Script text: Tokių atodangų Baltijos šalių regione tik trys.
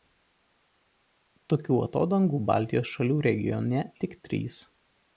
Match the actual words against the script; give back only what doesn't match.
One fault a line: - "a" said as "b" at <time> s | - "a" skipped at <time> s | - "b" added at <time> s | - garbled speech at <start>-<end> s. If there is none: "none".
none